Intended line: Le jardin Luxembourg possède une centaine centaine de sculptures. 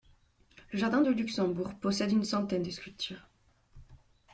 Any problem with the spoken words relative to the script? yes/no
yes